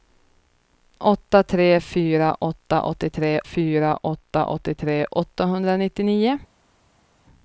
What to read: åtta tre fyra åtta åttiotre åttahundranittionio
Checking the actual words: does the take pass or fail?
fail